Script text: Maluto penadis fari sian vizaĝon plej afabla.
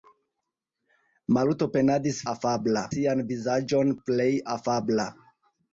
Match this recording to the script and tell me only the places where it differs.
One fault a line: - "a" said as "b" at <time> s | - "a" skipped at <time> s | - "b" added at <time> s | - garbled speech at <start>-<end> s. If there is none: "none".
- "fari" said as "afabla" at 2.3 s